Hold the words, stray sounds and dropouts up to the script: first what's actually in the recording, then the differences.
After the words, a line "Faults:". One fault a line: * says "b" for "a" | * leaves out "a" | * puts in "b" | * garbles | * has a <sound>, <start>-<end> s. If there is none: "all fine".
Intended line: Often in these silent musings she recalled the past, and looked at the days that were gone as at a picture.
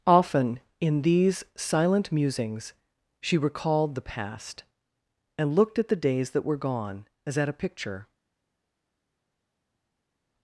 Often in these silent musings she recalled the past, and looked at the days that were gone as at a picture.
Faults:
all fine